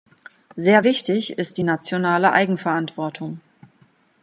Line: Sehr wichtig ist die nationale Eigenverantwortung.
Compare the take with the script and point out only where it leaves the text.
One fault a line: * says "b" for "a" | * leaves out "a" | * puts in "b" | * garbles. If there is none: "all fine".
all fine